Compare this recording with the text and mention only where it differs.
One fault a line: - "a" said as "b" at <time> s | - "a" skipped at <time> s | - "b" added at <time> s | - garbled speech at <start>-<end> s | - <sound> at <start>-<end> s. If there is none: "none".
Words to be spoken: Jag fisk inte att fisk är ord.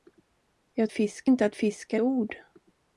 none